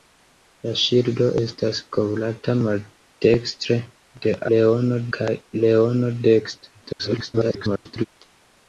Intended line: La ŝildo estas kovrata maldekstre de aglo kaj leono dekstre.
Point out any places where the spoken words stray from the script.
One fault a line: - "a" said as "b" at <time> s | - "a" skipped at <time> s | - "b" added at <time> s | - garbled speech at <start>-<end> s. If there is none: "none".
- "aglo" said as "leono" at 4.5 s
- garbled speech at 6.8-8.1 s